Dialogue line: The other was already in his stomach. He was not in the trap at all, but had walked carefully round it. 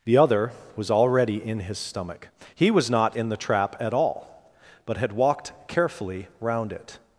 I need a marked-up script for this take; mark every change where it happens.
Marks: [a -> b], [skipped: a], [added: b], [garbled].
The other was already in his stomach. He was not in the trap at all, but had walked carefully round it.